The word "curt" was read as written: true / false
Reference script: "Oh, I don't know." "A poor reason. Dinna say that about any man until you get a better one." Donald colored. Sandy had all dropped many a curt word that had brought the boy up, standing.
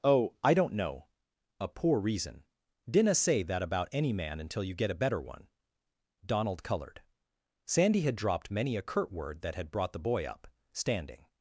true